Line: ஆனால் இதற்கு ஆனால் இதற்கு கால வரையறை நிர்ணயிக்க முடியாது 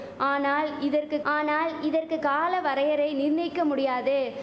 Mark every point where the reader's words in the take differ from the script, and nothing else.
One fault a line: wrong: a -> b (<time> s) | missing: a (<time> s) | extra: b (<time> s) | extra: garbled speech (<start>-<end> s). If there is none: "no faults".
no faults